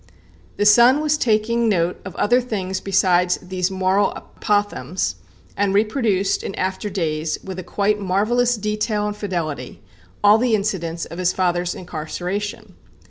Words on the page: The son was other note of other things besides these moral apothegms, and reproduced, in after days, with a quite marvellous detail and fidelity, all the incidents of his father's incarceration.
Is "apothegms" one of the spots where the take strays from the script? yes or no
no